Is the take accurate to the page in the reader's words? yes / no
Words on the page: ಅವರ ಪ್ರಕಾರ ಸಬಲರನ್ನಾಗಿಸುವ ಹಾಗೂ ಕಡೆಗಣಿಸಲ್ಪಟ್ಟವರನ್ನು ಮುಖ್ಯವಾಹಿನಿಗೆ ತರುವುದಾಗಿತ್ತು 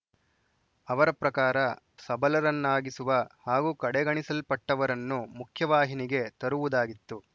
yes